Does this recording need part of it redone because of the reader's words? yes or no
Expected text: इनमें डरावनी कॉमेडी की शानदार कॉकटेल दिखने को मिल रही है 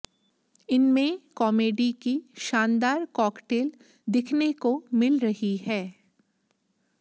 yes